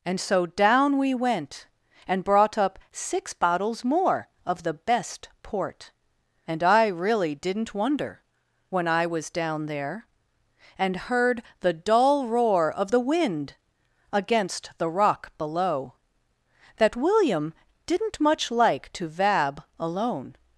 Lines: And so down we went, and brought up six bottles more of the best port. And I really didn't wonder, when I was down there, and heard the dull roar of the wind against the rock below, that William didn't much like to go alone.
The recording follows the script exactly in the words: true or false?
false